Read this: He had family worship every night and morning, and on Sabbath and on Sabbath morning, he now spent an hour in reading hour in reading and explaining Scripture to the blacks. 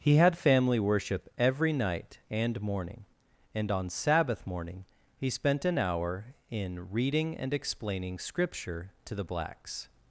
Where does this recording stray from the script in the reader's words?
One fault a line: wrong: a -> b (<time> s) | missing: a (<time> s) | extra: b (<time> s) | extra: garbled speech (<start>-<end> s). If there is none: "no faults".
missing: and on Sabbath (4.5 s)
missing: now (5.3 s)
missing: hour in reading (7.4 s)